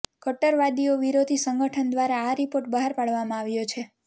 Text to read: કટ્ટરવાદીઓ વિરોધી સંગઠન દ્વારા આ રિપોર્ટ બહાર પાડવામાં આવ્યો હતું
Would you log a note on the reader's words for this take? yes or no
yes